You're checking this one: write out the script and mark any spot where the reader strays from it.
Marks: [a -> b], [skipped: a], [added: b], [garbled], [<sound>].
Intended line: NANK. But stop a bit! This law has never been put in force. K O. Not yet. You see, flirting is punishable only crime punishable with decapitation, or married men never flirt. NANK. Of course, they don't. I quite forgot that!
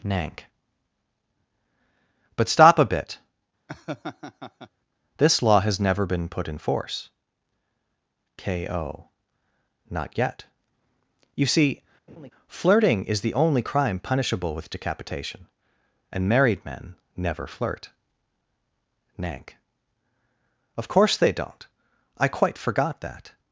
NANK. But stop a bit! [laugh] This law has never been put in force. K O. Not yet. You see, [laugh] flirting is [punishable -> the] only crime punishable with decapitation, [or -> and] married men never flirt. NANK. Of course, they don't. I quite forgot that!